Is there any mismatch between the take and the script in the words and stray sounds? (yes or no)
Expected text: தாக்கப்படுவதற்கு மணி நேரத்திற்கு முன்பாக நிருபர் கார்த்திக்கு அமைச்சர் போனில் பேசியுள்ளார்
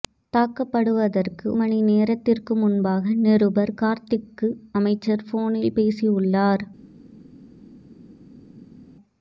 no